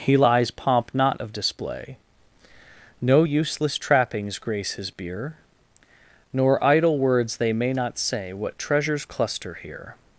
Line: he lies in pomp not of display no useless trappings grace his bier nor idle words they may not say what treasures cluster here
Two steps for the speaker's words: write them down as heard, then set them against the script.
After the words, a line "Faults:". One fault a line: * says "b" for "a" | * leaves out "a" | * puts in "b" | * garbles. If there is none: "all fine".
he lies pomp not of display no useless trappings grace his bier nor idle words they may not say what treasures cluster here
Faults:
* leaves out "in"